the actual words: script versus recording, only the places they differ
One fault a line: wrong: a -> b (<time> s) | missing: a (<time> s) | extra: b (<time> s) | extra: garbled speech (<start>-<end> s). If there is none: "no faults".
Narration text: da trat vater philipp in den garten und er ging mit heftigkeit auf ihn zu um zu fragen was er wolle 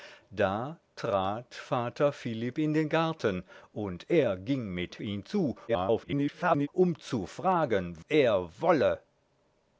missing: heftigkeit auf (5.0 s)
extra: garbled speech (5.7-6.7 s)
missing: was (8.0 s)